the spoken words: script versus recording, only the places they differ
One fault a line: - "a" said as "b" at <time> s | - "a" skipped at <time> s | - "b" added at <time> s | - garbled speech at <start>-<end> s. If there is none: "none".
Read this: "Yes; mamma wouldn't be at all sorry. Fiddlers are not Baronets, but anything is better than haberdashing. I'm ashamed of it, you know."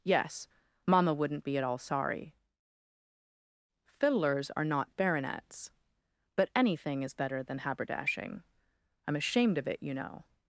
none